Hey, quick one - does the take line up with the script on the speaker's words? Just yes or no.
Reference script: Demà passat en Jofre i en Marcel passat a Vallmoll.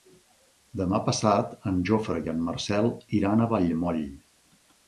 no